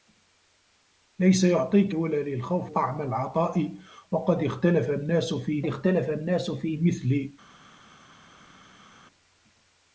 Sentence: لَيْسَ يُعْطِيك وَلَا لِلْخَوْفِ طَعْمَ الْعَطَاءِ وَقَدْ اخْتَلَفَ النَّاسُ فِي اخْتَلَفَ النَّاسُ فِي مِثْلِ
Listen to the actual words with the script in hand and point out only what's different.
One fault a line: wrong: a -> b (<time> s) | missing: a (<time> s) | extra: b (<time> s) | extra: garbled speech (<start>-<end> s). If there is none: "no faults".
no faults